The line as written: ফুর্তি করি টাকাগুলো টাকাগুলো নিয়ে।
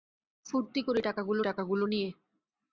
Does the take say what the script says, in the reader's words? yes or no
yes